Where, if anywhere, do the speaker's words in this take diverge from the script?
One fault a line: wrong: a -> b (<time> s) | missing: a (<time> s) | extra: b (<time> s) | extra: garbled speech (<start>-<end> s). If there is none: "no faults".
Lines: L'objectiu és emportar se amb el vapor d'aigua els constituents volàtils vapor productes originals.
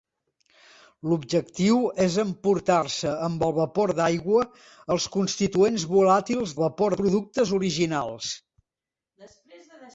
no faults